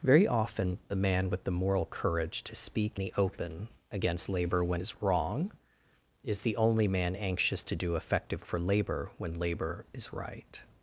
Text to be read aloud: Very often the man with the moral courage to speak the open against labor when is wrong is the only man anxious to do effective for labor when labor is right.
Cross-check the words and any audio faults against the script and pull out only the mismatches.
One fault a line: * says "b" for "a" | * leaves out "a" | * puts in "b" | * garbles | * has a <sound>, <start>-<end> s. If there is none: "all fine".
all fine